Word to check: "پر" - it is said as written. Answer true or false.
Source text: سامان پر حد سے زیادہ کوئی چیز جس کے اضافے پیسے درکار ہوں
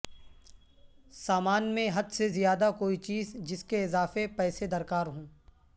false